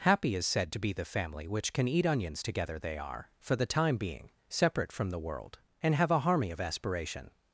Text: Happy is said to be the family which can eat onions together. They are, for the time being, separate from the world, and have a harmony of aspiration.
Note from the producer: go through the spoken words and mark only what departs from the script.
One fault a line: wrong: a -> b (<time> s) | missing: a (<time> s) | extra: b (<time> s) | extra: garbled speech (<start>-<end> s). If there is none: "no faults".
no faults